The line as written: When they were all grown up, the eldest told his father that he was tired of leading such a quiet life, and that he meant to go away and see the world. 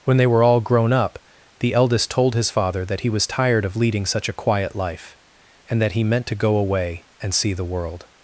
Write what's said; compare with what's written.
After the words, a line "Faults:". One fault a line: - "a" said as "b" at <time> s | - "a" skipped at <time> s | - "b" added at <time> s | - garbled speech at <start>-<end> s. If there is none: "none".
When they were all grown up, the eldest told his father that he was tired of leading such a quiet life, and that he meant to go away and see the world.
Faults:
none